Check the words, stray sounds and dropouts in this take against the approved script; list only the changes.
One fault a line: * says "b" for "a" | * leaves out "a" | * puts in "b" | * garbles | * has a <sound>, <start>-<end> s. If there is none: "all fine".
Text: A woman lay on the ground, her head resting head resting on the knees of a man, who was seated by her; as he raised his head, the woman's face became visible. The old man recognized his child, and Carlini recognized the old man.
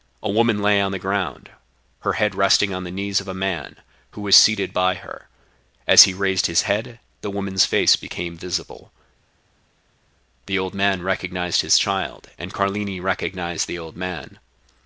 * leaves out "head resting"